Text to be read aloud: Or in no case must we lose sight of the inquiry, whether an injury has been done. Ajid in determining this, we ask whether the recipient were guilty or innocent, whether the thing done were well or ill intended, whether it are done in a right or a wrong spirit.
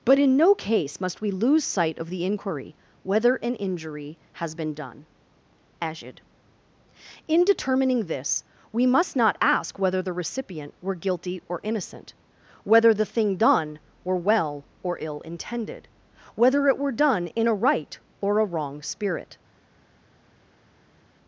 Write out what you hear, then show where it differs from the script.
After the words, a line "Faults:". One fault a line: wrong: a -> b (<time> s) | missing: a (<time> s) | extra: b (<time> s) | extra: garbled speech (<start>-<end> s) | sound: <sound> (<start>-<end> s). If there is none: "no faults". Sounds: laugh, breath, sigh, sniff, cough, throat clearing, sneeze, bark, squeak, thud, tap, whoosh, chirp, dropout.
But in no case must we lose sight of the inquiry, whether an injury has been done. Ajid in determining this, we must not ask whether the recipient were guilty or innocent, whether the thing done were well or ill intended, whether it were done in a right or a wrong spirit.
Faults:
wrong: Or -> But (0.0 s)
extra: must not (8.9 s)
wrong: are -> were (16.8 s)